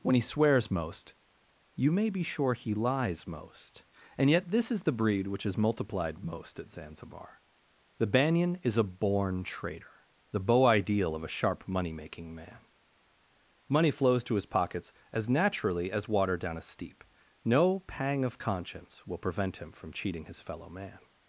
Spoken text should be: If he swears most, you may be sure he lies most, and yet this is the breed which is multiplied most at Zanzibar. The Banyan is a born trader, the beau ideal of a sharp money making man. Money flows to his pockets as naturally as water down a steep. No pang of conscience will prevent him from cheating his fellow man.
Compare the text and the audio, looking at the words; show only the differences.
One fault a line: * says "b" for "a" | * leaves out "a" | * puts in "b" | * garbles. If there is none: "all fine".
* says "When" for "If"